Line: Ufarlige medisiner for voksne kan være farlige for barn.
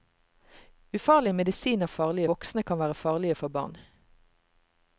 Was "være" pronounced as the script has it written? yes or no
yes